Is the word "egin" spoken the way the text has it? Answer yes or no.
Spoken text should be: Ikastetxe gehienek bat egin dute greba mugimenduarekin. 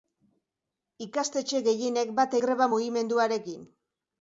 no